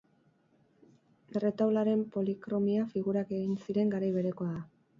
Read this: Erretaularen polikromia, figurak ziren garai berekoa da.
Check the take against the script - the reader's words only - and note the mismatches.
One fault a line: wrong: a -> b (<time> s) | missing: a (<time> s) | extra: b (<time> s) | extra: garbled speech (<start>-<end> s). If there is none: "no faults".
extra: egin (3.4 s)